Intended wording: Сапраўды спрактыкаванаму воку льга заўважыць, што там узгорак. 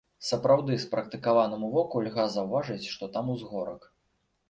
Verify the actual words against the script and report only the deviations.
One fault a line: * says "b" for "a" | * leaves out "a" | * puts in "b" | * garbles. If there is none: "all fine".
all fine